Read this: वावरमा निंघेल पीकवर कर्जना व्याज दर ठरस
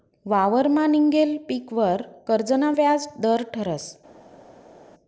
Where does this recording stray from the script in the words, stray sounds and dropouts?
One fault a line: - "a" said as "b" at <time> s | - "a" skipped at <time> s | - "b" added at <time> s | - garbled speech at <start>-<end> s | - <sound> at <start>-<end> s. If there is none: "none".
none